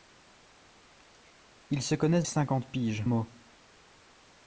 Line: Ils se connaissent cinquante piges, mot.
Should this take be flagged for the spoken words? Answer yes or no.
no